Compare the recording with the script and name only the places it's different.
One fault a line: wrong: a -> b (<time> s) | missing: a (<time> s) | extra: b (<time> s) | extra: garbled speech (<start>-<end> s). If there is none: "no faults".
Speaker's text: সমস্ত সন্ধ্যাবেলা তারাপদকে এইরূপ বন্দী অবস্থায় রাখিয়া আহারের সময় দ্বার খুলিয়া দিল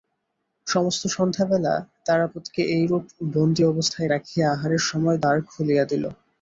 no faults